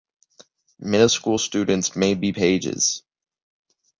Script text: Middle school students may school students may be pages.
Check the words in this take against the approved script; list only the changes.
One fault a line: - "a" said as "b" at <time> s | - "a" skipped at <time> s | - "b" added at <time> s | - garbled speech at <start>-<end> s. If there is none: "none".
- "school students may" skipped at 2.1 s